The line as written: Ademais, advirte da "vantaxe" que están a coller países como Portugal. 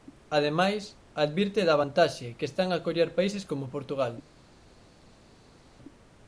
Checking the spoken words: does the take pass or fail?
pass